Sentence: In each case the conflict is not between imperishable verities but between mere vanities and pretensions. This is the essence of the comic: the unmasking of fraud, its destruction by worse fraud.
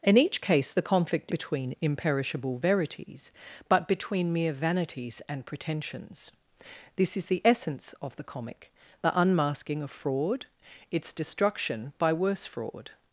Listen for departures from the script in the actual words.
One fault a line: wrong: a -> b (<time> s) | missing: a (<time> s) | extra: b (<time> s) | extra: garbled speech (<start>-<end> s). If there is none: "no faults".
missing: is not (1.3 s)